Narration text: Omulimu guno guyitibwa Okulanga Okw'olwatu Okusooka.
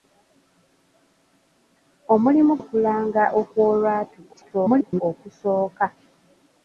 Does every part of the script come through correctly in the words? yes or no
no